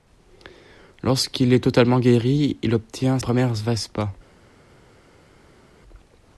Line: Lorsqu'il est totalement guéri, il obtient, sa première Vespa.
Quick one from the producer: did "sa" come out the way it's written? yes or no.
no